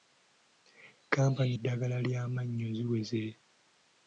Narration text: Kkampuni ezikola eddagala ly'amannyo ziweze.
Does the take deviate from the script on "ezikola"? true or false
true